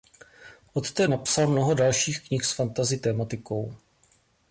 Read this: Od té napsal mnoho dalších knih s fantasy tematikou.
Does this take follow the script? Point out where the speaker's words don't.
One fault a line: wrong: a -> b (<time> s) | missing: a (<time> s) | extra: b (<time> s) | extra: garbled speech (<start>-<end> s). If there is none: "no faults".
no faults